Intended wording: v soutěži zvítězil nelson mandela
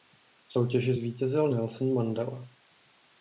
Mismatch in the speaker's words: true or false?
false